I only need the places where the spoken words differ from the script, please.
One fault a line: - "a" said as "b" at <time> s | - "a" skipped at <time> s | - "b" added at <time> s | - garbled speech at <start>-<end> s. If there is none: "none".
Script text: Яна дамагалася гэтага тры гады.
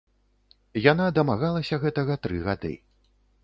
none